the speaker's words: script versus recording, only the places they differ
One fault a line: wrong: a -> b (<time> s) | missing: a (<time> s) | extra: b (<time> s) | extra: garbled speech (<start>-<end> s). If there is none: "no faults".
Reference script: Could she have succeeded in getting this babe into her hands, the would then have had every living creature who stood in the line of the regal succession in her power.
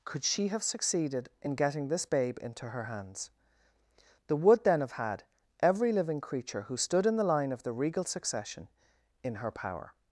no faults